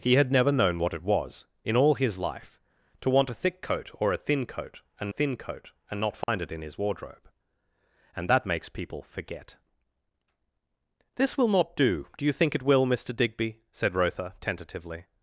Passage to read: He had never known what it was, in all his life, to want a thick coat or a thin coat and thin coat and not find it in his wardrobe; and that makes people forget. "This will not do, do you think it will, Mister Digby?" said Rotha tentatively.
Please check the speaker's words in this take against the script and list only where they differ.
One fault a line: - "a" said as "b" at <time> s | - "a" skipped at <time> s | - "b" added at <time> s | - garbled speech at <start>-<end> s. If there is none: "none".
none